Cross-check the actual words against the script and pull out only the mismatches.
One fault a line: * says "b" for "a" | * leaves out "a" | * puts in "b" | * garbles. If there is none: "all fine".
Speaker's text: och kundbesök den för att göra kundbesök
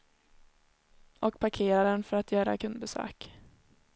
* says "parkerar" for "kundbesök"